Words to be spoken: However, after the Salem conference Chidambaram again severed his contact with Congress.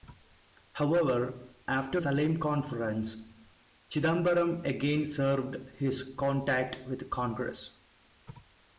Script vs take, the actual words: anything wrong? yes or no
yes